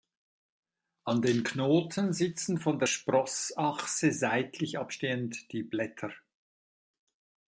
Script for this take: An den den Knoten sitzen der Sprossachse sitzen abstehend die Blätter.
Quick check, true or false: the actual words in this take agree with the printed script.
false